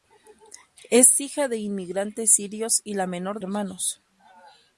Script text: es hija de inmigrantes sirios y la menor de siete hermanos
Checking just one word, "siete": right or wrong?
wrong